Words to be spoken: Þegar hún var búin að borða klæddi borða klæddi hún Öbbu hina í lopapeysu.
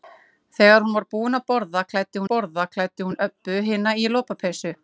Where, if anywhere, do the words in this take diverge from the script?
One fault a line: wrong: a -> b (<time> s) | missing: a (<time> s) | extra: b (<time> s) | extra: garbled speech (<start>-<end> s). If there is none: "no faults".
no faults